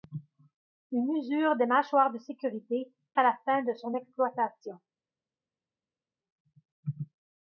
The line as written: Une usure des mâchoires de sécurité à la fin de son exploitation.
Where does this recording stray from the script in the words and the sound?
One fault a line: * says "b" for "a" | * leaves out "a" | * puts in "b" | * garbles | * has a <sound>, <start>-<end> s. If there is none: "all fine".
all fine